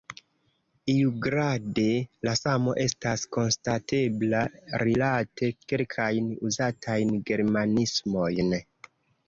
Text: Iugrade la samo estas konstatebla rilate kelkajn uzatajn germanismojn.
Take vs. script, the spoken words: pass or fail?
pass